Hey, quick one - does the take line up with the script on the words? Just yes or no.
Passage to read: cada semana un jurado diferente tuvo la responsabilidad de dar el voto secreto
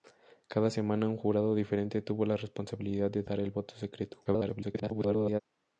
no